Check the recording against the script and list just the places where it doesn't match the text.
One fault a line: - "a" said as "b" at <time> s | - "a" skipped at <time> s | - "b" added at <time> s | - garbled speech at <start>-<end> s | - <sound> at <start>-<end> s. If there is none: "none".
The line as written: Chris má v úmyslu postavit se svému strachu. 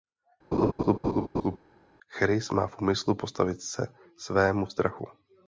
- laugh at 0.5-1.6 s